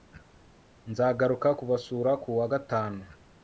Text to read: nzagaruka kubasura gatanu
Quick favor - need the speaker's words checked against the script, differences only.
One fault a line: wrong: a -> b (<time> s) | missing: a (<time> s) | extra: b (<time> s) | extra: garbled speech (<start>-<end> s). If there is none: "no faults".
extra: kuwa (2.2 s)